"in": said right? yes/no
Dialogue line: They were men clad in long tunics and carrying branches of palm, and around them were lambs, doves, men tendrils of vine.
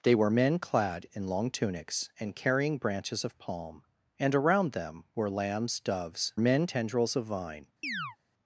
yes